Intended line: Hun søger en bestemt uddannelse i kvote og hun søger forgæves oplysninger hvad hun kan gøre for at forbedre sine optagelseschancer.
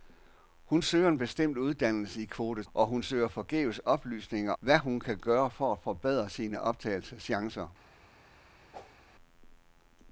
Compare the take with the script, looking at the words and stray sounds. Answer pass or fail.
fail